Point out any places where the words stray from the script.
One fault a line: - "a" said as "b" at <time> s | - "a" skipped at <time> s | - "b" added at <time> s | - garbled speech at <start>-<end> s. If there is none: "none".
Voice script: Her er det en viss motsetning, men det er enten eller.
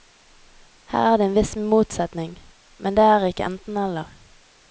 - "ikke" added at 3.3 s